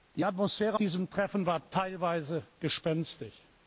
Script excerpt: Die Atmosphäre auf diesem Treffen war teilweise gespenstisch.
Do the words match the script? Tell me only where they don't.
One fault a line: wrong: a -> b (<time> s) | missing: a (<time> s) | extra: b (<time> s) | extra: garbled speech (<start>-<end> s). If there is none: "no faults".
missing: auf (0.8 s)